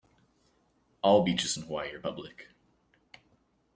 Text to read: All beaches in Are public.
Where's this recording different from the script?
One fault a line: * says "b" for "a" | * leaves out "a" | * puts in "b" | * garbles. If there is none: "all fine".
* puts in "Hawaii"